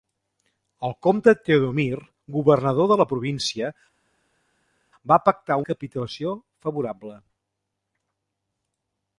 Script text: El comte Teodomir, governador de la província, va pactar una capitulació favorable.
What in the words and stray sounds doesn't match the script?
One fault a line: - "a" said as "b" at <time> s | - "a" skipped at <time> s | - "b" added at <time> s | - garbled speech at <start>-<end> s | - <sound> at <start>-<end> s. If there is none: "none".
- "una" skipped at 5.6 s